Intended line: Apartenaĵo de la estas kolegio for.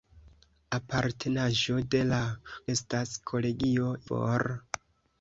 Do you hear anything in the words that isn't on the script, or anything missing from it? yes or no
no